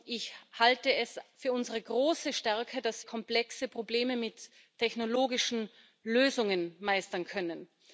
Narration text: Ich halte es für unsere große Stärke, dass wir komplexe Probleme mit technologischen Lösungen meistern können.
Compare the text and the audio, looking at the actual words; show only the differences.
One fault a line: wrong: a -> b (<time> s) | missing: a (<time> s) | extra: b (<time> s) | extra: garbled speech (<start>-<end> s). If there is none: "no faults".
missing: wir (3.0 s)